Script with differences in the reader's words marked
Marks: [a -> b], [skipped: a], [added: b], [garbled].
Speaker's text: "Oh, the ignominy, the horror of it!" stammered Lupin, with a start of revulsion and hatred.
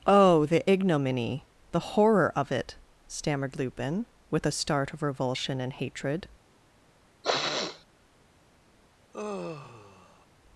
"Oh, the ignominy, the horror of it!" stammered Lupin, with a start of revulsion and hatred.